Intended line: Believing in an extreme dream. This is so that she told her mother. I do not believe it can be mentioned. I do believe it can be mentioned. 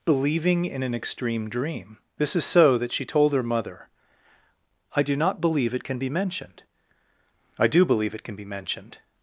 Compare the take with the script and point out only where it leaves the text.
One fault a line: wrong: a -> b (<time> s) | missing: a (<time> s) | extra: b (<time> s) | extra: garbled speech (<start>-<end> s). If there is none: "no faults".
no faults